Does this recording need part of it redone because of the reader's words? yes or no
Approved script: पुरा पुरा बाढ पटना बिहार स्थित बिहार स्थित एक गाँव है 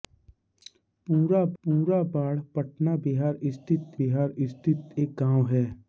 no